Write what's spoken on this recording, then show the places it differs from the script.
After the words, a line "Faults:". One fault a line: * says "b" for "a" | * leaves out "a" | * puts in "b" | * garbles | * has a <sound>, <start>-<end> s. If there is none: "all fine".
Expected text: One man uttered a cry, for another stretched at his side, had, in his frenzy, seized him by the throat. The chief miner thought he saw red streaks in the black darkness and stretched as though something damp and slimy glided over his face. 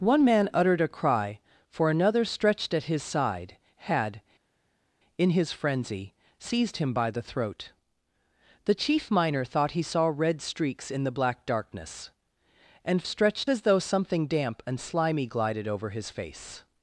One man uttered a cry, for another stretched at his side, had, in his frenzy, seized him by the throat. The chief miner thought he saw red streaks in the black darkness and stretched as though something damp and slimy glided over his face.
Faults:
all fine